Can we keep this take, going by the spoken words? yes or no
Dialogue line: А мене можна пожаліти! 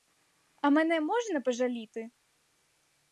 yes